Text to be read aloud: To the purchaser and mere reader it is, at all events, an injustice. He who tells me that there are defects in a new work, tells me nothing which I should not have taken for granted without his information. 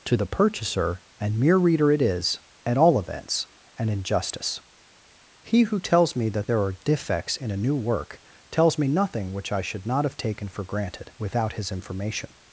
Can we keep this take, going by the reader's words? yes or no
yes